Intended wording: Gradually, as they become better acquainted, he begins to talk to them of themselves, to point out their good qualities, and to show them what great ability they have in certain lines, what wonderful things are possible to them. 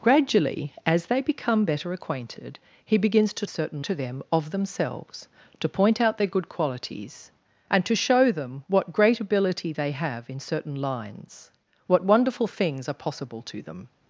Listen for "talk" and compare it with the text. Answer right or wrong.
wrong